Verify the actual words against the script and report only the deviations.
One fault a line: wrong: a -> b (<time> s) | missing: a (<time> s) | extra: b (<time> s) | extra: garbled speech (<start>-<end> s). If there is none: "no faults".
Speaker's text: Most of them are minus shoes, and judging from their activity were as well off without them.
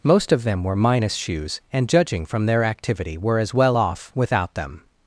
wrong: are -> were (0.6 s)